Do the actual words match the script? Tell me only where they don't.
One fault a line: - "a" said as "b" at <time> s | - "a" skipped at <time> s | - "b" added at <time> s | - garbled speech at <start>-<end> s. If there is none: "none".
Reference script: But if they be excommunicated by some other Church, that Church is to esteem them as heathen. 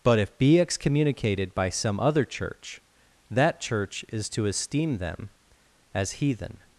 - "they" skipped at 0.4 s